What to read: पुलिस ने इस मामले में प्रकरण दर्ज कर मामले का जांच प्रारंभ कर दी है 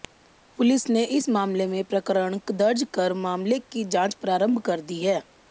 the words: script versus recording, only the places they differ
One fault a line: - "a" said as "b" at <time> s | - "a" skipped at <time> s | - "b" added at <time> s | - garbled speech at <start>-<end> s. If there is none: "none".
- "का" said as "की" at 3.6 s